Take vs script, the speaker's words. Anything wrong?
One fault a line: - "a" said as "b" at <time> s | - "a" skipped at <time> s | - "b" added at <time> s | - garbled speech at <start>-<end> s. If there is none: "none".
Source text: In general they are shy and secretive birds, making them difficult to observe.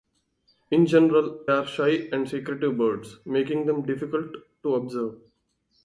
- "they" skipped at 1.4 s